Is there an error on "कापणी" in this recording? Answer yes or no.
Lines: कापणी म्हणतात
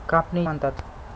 no